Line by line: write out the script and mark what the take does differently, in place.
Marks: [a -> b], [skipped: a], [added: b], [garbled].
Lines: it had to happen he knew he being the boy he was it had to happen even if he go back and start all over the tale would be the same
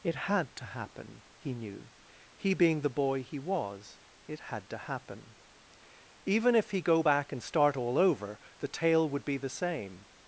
it had to happen he knew he being the boy he was it had to happen even if he go back and start all over the tale would be the same